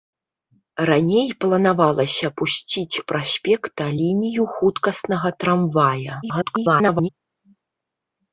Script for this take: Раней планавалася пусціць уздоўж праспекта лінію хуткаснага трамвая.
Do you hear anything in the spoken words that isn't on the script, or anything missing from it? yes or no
yes